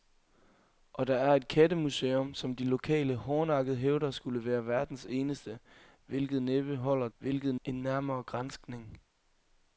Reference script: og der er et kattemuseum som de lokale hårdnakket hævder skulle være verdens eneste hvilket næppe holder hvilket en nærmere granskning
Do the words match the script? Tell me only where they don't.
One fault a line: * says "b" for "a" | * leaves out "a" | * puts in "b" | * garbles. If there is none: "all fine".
all fine